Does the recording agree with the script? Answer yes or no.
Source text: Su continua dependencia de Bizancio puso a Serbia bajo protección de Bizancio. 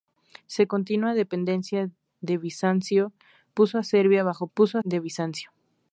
no